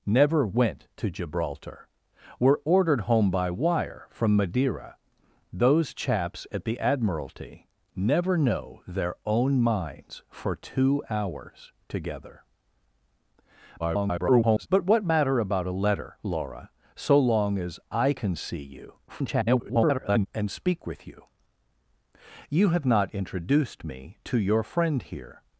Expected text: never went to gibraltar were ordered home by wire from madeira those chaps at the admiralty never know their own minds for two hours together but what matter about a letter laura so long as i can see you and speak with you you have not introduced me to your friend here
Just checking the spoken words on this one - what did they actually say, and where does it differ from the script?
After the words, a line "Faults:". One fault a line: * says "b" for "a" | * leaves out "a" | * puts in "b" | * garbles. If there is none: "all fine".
never went to gibraltar were ordered home by wire from madeira those chaps at the admiralty never know their own minds for two hours together [garbled] but what matter about a letter laura so long as i can see you [garbled] and speak with you you have not introduced me to your friend here
Faults:
* garbles
* garbles